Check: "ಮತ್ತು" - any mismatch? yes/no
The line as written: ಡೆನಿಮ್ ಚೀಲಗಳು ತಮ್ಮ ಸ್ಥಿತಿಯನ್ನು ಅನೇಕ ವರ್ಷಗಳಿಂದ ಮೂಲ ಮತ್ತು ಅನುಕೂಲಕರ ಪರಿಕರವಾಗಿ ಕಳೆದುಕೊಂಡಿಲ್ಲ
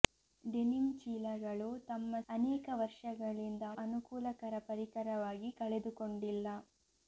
yes